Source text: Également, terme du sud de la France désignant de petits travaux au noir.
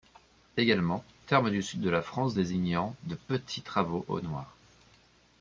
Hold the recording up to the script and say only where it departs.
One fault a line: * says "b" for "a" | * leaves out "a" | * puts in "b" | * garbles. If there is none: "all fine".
all fine